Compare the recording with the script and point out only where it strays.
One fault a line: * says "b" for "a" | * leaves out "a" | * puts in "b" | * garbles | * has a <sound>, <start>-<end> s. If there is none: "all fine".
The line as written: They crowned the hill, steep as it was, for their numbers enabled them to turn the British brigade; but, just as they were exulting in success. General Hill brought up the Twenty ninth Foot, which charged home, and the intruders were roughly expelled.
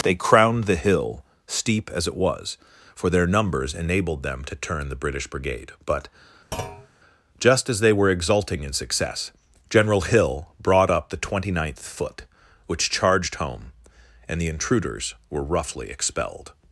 * has a thud, 6.5-6.9 s